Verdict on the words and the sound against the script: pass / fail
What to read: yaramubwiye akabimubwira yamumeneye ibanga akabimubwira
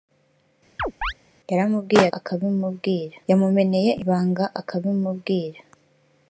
fail